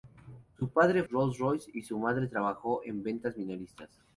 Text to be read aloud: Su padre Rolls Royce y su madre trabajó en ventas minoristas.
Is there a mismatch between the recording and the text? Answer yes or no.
no